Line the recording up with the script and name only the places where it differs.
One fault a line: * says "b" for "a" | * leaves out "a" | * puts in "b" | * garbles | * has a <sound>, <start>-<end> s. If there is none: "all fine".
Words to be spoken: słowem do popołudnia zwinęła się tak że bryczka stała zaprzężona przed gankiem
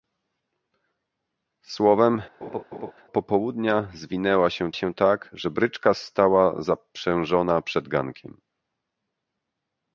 * leaves out "do"
* has a laugh, 2.4-2.9 s
* puts in "się"